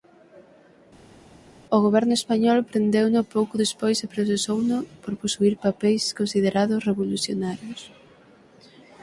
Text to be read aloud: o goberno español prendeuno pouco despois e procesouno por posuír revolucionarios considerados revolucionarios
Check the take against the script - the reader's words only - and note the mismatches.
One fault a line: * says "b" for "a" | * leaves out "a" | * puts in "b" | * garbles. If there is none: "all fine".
* says "papeis" for "revolucionarios"